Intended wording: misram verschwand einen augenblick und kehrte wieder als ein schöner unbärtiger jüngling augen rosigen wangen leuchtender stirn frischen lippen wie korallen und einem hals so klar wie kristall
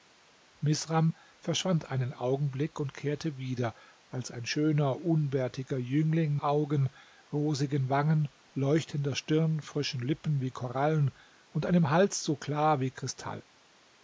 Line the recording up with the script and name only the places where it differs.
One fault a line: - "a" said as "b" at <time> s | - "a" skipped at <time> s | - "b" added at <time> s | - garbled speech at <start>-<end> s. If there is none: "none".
none